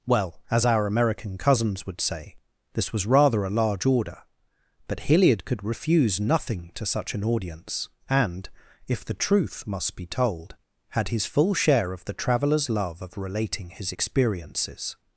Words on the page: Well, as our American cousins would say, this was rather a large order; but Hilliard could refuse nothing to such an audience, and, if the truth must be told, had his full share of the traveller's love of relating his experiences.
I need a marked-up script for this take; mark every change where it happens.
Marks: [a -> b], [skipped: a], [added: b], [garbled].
Well, as our American cousins would say, this was rather a large order; but Hilliard could refuse nothing to such an audience, and, if the truth must be told, had his full share of the traveller's love of relating his experiences.